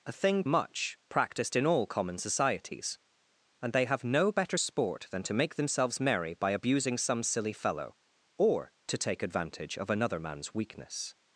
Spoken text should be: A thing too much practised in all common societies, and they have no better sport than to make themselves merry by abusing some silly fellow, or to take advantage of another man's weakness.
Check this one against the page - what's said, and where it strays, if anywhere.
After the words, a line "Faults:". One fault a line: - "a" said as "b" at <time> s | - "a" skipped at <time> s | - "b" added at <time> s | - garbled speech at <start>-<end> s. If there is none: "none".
A thing much practised in all common societies, and they have no better sport than to make themselves merry by abusing some silly fellow, or to take advantage of another man's weakness.
Faults:
- "too" skipped at 0.4 s